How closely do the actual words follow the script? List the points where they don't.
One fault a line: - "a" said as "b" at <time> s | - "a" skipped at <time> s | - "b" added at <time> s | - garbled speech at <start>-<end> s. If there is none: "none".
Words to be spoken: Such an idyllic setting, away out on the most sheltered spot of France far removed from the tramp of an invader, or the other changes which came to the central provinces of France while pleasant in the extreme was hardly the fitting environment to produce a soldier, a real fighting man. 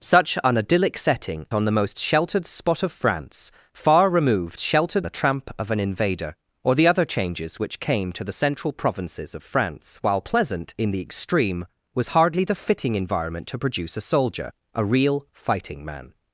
- "away out" skipped at 1.4 s
- "from" said as "sheltered" at 4.6 s